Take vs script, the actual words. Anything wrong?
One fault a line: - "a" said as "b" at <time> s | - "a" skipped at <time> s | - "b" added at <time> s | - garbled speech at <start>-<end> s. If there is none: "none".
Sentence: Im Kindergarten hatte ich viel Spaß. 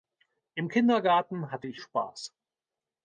- "viel" skipped at 1.8 s